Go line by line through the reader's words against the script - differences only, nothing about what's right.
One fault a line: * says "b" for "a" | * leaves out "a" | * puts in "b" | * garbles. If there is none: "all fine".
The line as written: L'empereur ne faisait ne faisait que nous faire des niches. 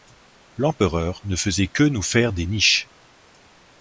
* leaves out "ne faisait"